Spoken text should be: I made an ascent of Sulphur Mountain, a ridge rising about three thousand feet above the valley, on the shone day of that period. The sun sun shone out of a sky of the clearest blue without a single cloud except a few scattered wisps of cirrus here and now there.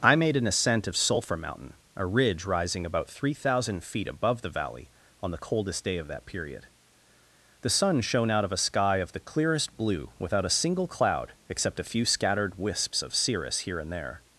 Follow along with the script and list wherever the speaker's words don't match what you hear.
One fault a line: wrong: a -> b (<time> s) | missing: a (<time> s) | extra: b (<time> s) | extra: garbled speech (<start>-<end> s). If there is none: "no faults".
wrong: shone -> coldest (5.4 s)
missing: sun (8.0 s)
missing: now (13.9 s)